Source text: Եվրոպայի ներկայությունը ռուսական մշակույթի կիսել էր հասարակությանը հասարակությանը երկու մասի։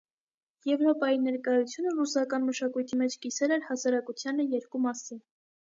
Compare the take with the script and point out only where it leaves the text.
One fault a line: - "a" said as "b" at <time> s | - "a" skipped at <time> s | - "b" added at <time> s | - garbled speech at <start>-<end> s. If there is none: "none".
- "մեջ" added at 3.0 s
- "հասարակությանը" skipped at 4.5 s